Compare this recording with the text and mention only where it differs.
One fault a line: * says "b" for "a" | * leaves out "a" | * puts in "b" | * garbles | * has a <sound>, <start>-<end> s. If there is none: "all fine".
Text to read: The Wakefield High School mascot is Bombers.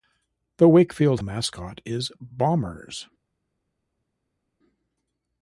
* leaves out "High School"